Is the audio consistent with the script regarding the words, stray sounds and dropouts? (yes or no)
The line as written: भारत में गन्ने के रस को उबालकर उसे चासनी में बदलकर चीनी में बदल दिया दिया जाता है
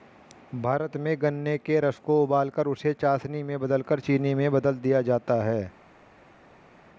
no